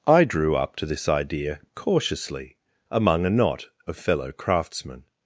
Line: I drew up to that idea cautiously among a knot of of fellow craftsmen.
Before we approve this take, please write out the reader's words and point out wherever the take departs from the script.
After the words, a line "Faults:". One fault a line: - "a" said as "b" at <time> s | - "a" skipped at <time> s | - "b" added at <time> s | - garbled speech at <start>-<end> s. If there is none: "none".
I drew up to this idea cautiously among a knot of fellow craftsmen.
Faults:
- "that" said as "this" at 0.8 s
- "of" skipped at 4.0 s